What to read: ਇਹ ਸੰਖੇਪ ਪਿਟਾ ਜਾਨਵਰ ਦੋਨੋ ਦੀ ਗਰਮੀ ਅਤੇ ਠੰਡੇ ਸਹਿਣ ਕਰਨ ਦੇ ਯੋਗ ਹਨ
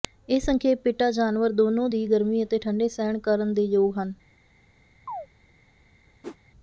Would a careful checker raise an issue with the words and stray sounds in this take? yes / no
yes